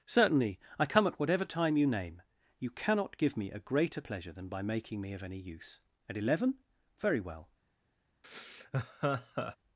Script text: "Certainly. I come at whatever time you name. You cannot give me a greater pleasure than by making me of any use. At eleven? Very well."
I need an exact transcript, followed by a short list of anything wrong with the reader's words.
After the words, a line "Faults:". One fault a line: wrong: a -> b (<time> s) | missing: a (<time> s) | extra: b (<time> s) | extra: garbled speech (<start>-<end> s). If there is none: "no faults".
"Certainly. I come at whatever time you name. You cannot give me a greater pleasure than by making me of any use. At eleven? Very well."
Faults:
no faults